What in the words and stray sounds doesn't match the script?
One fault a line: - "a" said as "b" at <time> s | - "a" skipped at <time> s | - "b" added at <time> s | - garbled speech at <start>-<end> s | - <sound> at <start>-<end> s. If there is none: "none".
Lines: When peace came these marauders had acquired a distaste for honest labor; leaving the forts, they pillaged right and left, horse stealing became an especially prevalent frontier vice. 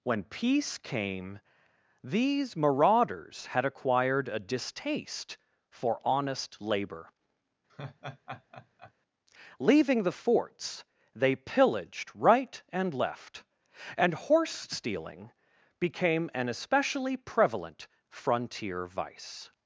- laugh at 7.7-8.9 s
- "and" added at 14.0 s